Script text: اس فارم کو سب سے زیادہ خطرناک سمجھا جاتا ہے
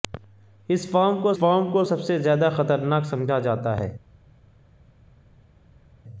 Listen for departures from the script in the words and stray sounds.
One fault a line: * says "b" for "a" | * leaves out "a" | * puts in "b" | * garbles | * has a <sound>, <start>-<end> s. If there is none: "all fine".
* puts in "فارم کو"